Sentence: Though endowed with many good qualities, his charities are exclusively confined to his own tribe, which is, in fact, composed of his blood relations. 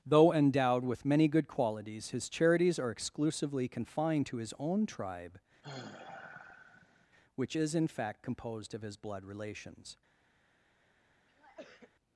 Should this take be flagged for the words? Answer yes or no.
no